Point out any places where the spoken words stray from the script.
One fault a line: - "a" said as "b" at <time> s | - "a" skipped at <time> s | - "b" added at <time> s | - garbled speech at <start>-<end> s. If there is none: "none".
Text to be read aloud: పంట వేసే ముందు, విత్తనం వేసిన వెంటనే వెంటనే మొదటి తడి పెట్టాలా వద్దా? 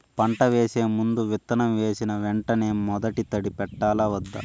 - "వెంటనే" skipped at 2.7 s